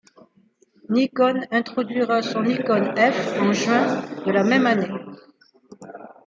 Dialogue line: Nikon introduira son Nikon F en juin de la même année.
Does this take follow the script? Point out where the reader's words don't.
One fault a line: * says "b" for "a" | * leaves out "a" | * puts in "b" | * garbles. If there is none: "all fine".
all fine